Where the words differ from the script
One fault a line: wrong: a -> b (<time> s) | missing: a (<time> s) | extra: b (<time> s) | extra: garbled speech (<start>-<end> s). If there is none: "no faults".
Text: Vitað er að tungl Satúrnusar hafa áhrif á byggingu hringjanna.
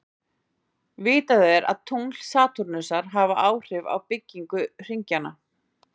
no faults